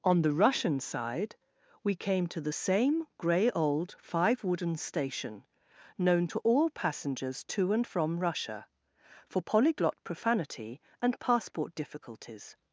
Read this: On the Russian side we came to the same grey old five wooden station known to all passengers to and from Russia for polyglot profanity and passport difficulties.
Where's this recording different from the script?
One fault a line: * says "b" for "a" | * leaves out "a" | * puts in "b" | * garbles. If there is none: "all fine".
all fine